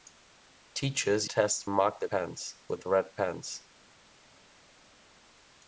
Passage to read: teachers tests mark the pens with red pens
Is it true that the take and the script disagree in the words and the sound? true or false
false